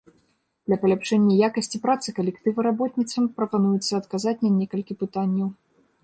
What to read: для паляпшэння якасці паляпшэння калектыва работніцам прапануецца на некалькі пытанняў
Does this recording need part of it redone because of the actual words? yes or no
yes